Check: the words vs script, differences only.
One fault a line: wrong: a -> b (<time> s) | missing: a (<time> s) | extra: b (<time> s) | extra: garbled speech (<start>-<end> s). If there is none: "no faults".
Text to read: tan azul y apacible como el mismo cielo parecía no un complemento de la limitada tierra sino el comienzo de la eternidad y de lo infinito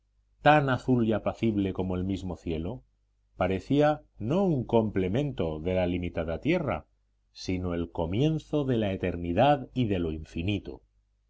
no faults